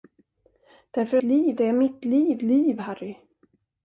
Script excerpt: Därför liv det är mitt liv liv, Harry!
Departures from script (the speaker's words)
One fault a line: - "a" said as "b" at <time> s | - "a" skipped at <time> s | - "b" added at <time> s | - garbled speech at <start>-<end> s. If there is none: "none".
none